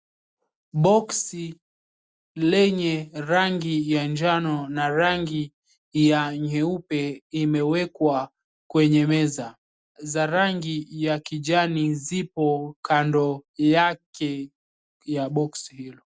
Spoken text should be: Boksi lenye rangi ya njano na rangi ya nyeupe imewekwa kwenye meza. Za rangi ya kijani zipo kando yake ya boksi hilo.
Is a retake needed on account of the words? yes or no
no